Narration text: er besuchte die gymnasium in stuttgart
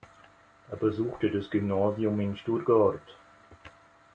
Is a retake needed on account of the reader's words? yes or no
yes